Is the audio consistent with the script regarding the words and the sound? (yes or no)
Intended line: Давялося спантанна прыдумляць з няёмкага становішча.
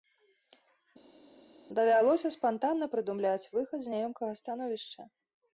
no